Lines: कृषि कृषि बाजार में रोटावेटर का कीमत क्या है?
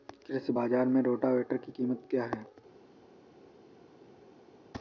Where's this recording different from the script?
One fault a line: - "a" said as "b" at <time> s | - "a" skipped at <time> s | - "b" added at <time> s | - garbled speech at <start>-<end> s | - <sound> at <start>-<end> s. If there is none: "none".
- "कृषि" skipped at 0.5 s
- "का" said as "की" at 1.6 s